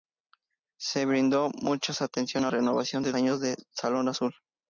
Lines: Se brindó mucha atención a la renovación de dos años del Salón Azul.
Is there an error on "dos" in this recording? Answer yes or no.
yes